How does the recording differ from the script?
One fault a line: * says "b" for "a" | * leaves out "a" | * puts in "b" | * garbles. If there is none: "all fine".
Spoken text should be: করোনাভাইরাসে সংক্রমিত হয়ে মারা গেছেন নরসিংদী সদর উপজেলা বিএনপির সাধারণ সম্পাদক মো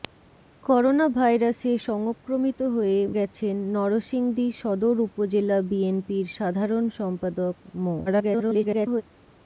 * leaves out "মারা"
* garbles